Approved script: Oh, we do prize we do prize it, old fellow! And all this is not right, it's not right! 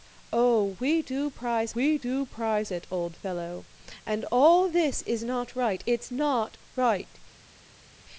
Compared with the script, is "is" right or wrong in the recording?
right